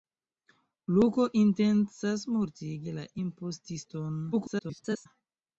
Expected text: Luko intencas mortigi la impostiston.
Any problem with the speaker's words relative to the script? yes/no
yes